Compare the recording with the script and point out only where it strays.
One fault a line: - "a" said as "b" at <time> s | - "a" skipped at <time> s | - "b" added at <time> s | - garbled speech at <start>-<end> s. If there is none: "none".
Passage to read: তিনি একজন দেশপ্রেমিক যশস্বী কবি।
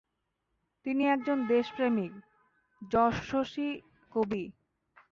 none